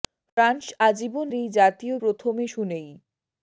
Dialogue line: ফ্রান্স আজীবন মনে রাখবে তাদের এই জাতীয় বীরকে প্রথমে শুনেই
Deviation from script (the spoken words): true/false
true